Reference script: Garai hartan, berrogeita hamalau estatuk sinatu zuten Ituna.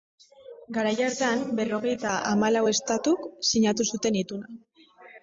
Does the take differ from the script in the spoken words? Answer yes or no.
no